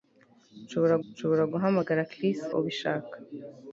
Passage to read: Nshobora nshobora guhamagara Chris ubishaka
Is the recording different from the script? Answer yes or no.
no